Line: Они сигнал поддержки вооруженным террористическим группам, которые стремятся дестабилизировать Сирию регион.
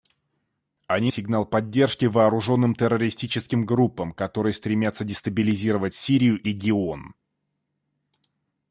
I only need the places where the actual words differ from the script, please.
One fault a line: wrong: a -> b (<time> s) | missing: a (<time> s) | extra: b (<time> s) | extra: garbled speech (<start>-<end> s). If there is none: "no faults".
no faults